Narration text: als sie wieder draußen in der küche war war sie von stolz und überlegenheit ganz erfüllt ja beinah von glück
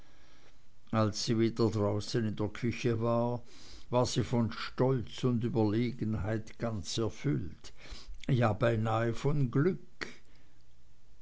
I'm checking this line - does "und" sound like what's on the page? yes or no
yes